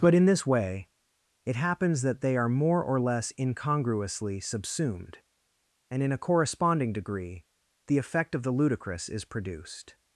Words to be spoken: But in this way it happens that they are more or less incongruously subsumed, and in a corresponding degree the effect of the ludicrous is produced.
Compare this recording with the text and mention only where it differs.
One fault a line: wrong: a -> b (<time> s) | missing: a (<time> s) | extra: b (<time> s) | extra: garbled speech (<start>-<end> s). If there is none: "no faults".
no faults